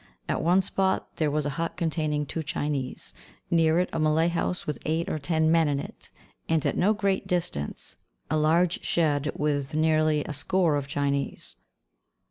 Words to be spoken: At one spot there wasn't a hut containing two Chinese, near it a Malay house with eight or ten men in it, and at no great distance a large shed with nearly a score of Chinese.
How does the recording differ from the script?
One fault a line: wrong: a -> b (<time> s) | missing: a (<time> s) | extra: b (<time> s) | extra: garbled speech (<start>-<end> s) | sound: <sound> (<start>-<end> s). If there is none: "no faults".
wrong: wasn't -> was (1.3 s)